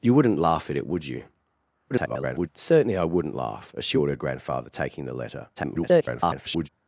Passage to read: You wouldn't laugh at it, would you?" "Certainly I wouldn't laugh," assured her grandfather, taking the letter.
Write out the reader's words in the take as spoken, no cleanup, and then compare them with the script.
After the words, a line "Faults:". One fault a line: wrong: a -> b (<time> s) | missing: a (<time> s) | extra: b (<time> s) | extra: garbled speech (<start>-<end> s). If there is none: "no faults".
You wouldn't laugh at it, would you?" [garbled] "Certainly I wouldn't laugh," assured her grandfather, taking the letter. [garbled]
Faults:
extra: garbled speech (1.9-2.5 s)
extra: garbled speech (5.5-6.7 s)